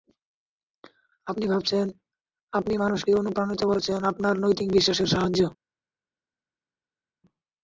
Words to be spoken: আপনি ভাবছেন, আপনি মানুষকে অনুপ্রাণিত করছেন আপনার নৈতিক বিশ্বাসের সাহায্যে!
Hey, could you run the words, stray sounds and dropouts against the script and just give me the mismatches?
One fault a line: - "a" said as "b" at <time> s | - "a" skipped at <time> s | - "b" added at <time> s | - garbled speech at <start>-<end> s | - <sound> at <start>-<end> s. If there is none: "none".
none